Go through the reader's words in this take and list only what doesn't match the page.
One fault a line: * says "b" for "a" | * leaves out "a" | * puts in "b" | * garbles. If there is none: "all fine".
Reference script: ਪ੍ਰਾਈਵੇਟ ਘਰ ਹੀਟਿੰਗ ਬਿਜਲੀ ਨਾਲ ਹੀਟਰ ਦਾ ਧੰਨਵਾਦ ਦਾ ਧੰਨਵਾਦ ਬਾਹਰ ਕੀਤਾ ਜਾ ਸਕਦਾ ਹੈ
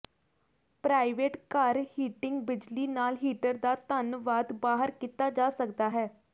* leaves out "ਦਾ ਧੰਨਵਾਦ"